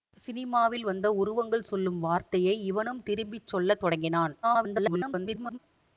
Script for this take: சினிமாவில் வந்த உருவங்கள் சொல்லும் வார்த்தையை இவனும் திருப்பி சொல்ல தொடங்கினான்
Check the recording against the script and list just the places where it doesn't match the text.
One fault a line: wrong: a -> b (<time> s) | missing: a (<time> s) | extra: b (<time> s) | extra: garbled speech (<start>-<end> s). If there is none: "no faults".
extra: garbled speech (4.4-5.6 s)